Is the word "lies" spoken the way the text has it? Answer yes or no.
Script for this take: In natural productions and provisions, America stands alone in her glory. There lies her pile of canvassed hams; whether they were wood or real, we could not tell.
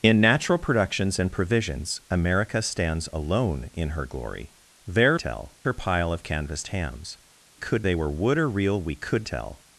no